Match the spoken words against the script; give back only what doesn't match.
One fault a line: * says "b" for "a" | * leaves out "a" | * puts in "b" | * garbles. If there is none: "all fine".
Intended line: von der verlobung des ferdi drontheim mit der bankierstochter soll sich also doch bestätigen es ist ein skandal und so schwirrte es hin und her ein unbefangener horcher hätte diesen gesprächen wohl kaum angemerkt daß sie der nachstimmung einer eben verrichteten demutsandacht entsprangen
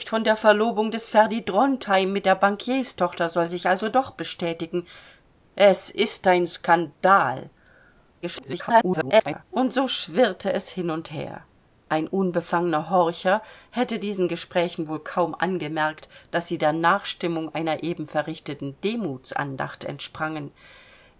* garbles